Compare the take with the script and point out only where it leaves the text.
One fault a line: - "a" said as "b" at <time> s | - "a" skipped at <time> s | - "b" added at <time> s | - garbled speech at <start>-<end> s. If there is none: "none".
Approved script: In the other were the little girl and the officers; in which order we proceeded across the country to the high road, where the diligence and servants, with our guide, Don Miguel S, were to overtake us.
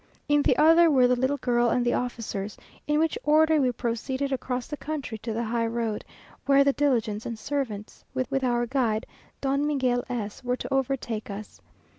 - "with" added at 8.3 s